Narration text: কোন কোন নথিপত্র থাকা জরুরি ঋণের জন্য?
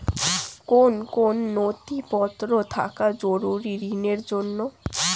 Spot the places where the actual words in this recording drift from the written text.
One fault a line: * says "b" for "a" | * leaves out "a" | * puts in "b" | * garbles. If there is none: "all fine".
all fine